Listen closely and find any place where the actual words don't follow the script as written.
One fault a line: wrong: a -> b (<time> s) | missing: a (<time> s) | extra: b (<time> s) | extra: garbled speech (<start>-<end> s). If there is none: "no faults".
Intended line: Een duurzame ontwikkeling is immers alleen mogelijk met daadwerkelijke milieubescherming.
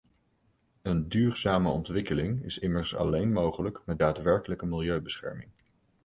no faults